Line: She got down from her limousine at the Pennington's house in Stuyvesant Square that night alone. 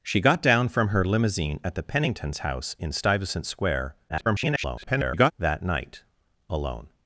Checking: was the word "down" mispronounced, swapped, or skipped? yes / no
no